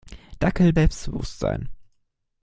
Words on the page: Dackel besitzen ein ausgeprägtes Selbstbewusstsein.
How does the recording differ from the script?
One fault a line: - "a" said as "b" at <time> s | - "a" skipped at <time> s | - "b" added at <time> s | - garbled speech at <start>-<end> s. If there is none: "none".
- "besitzen ein ausgeprägtes" skipped at 0.7 s